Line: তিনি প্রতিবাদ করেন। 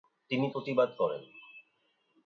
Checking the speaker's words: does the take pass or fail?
pass